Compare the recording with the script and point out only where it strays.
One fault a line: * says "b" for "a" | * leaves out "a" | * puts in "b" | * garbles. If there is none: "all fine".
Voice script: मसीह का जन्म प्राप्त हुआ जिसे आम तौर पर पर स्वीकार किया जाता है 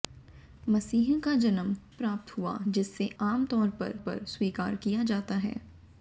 all fine